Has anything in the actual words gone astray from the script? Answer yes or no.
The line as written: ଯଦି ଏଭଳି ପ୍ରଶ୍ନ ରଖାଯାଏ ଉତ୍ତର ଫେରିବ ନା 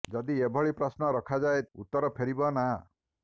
no